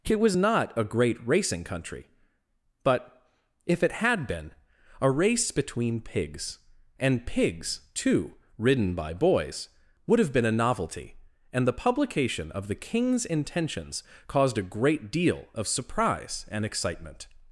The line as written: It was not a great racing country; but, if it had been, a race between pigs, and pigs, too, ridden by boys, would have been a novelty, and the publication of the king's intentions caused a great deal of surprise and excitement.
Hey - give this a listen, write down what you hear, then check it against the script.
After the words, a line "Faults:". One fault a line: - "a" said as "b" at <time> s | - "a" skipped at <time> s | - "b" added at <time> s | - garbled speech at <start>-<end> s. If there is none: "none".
It was not a great racing country; but, if it had been, a race between pigs, and pigs, too, ridden by boys, would have been a novelty, and the publication of the king's intentions caused a great deal of surprise and excitement.
Faults:
none